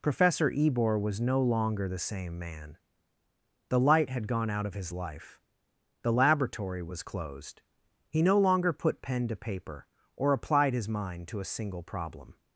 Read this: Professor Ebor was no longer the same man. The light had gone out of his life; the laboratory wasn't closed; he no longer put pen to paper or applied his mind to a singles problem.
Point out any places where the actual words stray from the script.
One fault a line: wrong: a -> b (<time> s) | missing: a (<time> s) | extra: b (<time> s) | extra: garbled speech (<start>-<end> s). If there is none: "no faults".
wrong: wasn't -> was (6.8 s)
wrong: singles -> single (11.4 s)